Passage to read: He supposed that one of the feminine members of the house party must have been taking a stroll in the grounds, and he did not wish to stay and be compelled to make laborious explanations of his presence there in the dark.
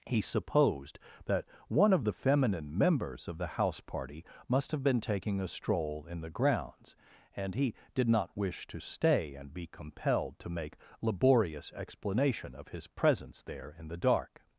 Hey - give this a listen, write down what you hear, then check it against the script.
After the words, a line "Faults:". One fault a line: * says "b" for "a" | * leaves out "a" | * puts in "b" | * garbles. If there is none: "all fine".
He supposed that one of the feminine members of the house party must have been taking a stroll in the grounds, and he did not wish to stay and be compelled to make laborious explanation of his presence there in the dark.
Faults:
* says "explanation" for "explanations"